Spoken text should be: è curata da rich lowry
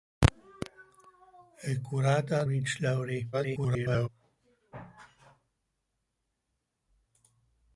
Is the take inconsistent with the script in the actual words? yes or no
yes